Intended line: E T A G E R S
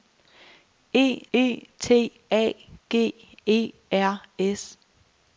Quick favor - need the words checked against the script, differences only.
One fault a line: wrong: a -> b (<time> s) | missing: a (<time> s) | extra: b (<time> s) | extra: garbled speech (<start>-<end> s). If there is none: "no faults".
extra: e (1.3 s)